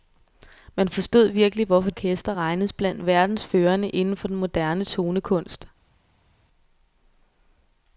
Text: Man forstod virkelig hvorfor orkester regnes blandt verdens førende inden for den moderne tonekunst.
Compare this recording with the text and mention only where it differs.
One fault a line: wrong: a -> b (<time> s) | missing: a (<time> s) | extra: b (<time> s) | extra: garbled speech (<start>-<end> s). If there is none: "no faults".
no faults